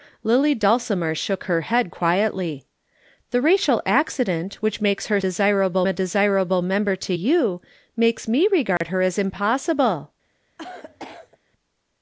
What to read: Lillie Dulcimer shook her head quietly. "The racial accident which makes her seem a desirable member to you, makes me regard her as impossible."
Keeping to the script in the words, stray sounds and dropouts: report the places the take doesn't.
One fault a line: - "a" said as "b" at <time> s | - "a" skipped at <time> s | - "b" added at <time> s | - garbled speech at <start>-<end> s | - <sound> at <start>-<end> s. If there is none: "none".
- "seem" said as "desirable" at 5.2 s
- dropout at 8.8-8.8 s
- cough at 10.6-11.4 s